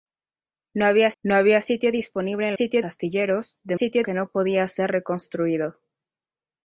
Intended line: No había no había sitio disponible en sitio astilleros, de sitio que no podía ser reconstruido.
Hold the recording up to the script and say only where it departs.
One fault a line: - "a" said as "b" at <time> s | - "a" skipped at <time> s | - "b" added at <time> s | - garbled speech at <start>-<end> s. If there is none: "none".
none